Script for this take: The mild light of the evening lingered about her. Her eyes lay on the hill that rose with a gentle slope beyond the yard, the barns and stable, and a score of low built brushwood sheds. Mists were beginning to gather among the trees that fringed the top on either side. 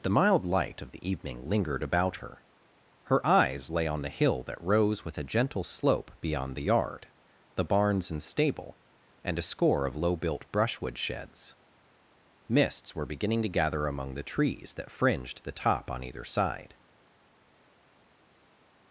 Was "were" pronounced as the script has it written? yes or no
yes